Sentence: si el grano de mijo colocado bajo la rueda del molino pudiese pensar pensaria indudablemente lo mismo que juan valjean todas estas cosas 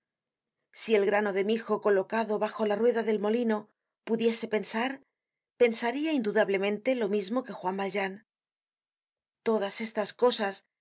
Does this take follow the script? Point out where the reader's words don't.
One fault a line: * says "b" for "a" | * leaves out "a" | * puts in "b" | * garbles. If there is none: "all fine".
all fine